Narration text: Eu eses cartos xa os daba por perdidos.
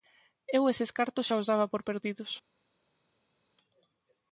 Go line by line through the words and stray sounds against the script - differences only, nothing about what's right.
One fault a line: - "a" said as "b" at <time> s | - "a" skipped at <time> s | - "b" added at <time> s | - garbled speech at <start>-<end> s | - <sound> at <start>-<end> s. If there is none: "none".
none